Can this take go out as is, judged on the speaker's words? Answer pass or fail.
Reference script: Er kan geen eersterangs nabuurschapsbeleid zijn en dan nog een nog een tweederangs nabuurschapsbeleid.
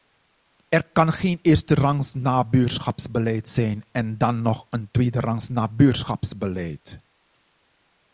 fail